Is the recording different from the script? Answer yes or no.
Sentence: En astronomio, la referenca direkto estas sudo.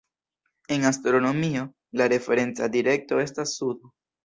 no